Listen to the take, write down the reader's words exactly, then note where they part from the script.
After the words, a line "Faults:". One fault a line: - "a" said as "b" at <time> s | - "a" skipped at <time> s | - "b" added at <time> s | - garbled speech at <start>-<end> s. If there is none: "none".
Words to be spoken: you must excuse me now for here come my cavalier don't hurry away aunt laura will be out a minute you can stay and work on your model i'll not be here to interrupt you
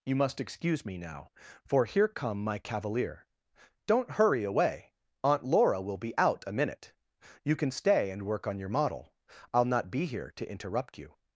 you must excuse me now for here come my cavalier don't hurry away aunt laura will be out a minute you can stay and work on your model i'll not be here to interrupt you
Faults:
none